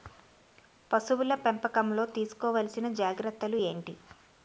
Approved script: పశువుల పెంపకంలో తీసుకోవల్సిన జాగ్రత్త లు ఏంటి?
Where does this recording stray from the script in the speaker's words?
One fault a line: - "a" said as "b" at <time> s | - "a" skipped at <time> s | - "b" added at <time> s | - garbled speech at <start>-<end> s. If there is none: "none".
none